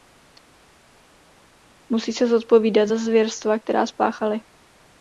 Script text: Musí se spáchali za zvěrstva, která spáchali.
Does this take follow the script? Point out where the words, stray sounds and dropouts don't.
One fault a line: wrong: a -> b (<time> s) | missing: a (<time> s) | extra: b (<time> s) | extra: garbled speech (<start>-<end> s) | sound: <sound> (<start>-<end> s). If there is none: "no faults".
wrong: spáchali -> zodpovídat (2.3 s)